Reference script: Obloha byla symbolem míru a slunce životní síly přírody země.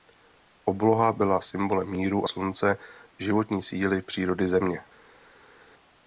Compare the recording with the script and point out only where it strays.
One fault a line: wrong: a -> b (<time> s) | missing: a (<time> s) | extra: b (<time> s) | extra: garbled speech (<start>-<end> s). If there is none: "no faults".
no faults